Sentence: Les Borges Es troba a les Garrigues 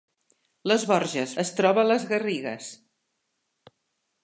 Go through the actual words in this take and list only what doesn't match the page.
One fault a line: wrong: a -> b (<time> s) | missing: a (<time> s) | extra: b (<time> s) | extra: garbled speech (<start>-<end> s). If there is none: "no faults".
no faults